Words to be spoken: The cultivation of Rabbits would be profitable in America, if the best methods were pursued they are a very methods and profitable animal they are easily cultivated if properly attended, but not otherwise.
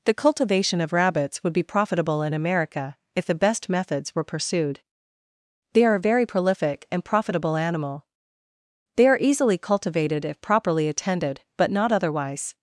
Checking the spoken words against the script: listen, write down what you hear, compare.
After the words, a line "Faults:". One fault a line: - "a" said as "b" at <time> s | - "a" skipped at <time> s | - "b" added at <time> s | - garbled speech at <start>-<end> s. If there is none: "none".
The cultivation of Rabbits would be profitable in America, if the best methods were pursued they are a very prolific and profitable animal they are easily cultivated if properly attended, but not otherwise.
Faults:
- "methods" said as "prolific" at 6.2 s